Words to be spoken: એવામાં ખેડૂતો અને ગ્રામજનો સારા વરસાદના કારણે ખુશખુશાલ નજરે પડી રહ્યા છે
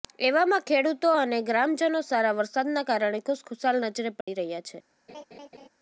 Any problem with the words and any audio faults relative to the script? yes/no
yes